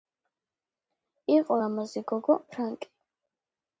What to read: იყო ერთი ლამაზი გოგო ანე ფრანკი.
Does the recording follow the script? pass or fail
fail